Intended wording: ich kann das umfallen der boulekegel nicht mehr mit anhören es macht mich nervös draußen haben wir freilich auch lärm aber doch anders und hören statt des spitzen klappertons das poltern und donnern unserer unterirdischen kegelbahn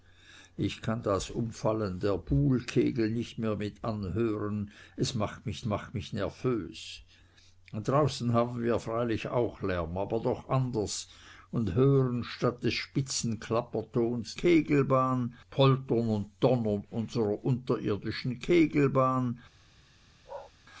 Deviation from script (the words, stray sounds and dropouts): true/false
true